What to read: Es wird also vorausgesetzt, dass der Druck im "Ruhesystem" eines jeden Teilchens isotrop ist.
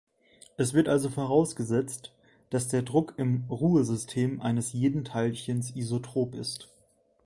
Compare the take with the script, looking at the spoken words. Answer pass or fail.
pass